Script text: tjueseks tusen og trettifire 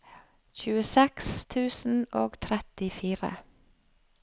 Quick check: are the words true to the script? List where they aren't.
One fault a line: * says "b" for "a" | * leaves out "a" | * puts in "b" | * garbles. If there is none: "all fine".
all fine